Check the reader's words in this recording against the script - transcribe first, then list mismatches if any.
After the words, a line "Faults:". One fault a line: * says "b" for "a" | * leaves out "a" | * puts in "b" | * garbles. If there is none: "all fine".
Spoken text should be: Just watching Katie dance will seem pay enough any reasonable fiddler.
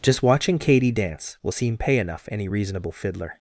Just watching Katie dance will seem pay enough any reasonable fiddler.
Faults:
all fine